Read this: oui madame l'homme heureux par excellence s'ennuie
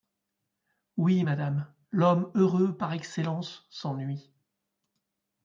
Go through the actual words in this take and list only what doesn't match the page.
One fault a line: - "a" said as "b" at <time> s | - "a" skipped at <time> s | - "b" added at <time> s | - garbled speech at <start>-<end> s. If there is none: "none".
none